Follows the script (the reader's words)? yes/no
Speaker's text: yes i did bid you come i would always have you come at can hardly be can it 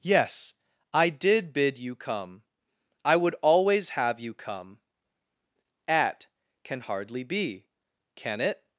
yes